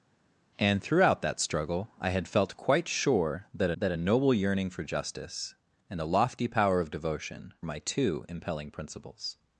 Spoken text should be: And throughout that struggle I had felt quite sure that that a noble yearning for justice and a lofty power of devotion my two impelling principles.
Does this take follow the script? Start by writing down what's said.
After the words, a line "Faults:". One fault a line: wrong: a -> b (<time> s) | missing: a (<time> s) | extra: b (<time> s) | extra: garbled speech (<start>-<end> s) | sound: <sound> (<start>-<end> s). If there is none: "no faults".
And throughout that struggle I had felt quite sure that that a noble yearning for justice and a lofty power of devotion my two impelling principles.
Faults:
no faults